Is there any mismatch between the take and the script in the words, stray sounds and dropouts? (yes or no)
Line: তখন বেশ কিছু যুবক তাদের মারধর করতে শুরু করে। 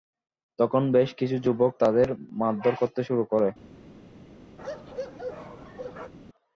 yes